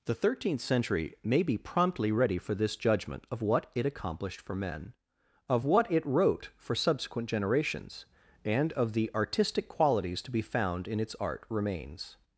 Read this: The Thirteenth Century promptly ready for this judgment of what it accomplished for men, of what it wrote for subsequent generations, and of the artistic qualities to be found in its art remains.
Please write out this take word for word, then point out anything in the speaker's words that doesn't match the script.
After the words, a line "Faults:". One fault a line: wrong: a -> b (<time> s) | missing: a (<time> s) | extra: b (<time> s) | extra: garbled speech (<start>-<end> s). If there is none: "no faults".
The Thirteenth Century may be promptly ready for this judgment of what it accomplished for men, of what it wrote for subsequent generations, and of the artistic qualities to be found in its art remains.
Faults:
extra: may be (1.2 s)